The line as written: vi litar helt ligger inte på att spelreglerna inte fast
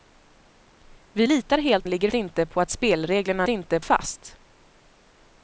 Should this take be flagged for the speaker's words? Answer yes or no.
no